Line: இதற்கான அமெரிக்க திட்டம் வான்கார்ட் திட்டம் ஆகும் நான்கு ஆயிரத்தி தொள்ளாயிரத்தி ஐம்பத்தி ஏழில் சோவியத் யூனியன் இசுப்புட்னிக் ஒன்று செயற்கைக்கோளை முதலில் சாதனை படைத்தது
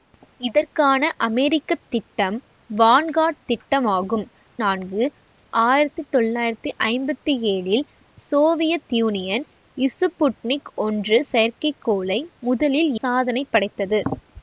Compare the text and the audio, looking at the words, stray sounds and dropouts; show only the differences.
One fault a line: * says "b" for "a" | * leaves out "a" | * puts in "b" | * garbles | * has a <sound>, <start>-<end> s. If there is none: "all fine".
all fine